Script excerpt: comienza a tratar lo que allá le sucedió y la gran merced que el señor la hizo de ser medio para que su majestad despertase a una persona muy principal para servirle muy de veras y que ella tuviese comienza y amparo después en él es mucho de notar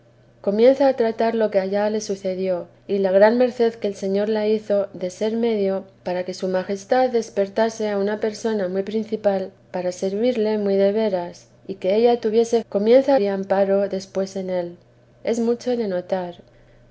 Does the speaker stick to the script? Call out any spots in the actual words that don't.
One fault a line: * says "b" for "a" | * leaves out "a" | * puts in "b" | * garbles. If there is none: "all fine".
all fine